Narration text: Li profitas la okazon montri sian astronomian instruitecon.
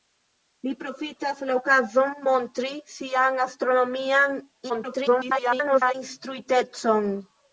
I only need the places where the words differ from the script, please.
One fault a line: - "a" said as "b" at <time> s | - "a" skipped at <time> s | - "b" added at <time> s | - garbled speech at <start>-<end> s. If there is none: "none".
- garbled speech at 4.7-6.0 s